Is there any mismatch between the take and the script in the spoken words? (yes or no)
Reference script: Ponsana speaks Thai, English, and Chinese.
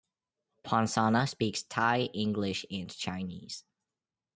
no